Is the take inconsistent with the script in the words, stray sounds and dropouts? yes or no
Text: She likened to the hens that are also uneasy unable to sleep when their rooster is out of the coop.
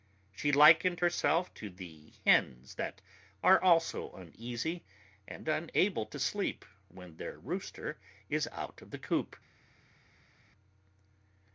yes